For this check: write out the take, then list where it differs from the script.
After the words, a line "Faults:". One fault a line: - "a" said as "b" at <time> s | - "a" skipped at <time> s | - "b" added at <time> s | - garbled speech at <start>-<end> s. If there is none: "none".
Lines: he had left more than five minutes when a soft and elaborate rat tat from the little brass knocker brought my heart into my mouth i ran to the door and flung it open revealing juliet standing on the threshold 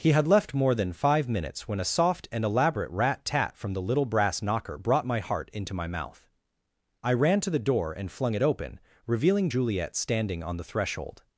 he had left more than five minutes when a soft and elaborate rat tat from the little brass knocker brought my heart into my mouth i ran to the door and flung it open revealing juliet standing on the threshold
Faults:
none